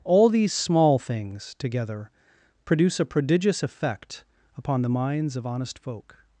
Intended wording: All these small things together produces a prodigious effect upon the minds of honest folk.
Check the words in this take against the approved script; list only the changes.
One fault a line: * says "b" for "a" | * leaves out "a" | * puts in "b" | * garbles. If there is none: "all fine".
* says "produce" for "produces"